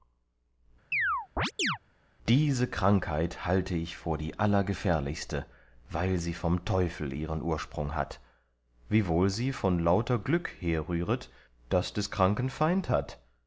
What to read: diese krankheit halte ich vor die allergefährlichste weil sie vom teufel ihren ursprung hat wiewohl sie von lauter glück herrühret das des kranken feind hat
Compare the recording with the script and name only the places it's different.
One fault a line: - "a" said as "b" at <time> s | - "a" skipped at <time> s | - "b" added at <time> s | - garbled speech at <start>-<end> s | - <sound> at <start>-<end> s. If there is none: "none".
- chirp at 0.9-1.8 s